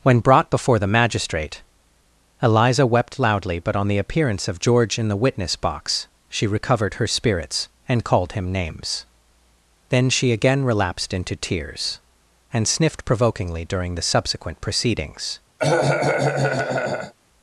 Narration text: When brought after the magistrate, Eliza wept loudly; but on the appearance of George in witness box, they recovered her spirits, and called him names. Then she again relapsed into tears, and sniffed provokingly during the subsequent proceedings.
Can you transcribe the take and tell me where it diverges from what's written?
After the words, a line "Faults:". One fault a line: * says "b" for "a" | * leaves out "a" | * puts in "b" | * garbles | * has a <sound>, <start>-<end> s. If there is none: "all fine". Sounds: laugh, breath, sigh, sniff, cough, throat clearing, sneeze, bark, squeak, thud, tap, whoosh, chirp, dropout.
When brought before the magistrate, Eliza wept loudly; but on the appearance of George in the witness box, she recovered her spirits, and called him names. Then she again relapsed into tears, and sniffed provokingly during the subsequent proceedings.
Faults:
* says "before" for "after"
* puts in "the"
* says "she" for "they"
* has a cough, 15.6-17.1 s